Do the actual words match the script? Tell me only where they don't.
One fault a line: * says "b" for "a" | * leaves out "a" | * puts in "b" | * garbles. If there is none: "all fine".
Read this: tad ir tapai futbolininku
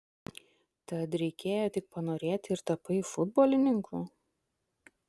* puts in "reikėjo tik panorėti"